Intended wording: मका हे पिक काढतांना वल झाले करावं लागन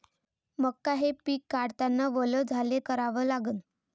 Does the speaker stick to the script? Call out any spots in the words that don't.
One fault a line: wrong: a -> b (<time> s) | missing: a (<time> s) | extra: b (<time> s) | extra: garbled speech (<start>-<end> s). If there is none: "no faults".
no faults